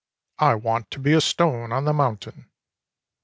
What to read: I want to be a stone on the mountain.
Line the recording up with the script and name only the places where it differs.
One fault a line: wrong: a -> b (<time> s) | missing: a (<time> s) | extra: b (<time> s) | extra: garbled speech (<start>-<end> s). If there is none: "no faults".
no faults